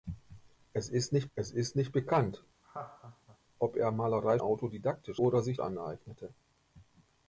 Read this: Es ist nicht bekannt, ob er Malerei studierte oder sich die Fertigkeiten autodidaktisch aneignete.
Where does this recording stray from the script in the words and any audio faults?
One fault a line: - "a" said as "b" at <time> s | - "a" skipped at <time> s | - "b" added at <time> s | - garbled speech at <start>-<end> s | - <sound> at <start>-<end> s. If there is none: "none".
- "es ist nicht" added at 1.3 s
- laugh at 2.6-3.4 s
- "studierte" said as "autodidaktisch" at 4.4 s
- "die Fertigkeiten autodidaktisch" skipped at 5.6 s